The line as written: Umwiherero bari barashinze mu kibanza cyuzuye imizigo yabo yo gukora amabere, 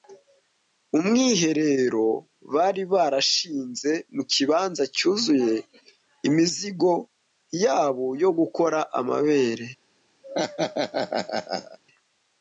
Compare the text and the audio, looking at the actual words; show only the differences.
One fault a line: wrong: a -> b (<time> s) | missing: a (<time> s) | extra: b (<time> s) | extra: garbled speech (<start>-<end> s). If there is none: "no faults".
no faults